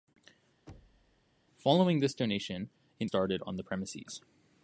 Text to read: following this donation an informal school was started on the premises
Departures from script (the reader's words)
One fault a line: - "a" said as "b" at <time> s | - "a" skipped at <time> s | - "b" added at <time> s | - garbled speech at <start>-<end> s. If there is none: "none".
- "informal school was" skipped at 3.1 s